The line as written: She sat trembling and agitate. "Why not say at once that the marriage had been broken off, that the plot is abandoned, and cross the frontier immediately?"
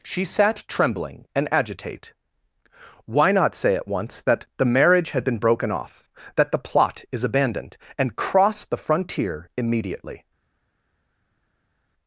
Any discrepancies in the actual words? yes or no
no